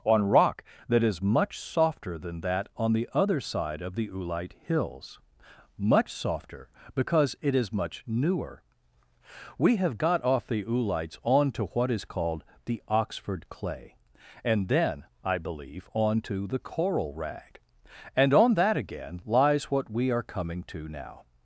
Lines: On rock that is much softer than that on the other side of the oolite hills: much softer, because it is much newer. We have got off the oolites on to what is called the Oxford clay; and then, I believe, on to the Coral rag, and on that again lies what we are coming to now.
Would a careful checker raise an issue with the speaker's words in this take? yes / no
no